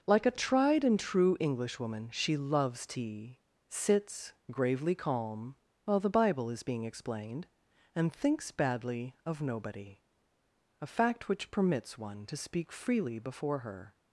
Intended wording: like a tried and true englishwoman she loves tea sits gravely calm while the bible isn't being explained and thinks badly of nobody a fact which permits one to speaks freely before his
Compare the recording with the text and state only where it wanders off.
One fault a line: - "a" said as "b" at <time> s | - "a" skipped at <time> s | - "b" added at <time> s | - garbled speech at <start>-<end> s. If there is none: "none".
- "isn't" said as "is" at 6.5 s
- "speaks" said as "speak" at 12.4 s
- "his" said as "her" at 13.6 s